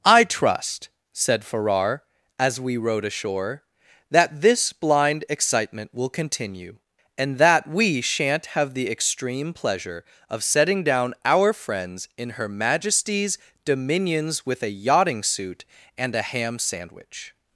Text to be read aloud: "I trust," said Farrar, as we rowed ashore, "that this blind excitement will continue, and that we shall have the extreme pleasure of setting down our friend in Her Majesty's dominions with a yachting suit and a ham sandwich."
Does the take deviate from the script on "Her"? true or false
false